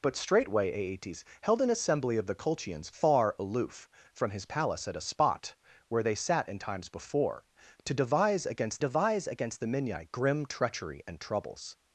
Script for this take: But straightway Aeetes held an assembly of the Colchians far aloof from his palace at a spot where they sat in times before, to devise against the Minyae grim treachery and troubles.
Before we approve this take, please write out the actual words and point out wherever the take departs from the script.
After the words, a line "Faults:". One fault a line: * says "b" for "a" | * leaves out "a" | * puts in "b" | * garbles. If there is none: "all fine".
But straightway Aeetes held an assembly of the Colchians far aloof from his palace at a spot where they sat in times before, to devise against devise against the Minyae grim treachery and troubles.
Faults:
* puts in "devise against"